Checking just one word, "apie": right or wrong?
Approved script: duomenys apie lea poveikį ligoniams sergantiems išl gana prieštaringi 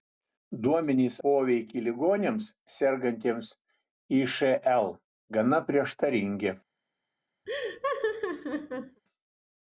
wrong